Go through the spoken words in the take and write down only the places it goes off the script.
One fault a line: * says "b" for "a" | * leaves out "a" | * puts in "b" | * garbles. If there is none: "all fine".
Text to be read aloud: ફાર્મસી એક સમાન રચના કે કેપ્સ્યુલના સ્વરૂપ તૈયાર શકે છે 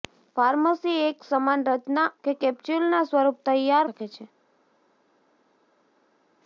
all fine